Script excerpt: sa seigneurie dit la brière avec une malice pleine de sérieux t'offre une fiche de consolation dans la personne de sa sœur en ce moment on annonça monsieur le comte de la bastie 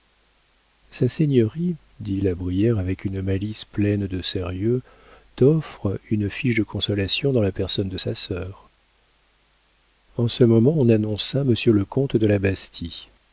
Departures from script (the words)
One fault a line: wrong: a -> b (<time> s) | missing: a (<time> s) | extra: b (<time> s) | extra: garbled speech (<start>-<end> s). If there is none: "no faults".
no faults